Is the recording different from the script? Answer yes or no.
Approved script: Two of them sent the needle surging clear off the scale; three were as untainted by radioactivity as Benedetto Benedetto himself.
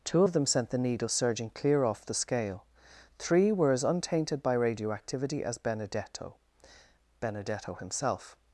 no